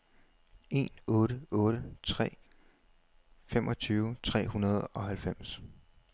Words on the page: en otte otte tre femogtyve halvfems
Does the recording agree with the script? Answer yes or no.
no